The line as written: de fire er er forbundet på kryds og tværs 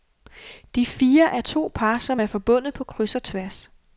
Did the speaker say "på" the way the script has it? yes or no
yes